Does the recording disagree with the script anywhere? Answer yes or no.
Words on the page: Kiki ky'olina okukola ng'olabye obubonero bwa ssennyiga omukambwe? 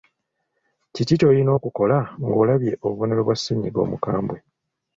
no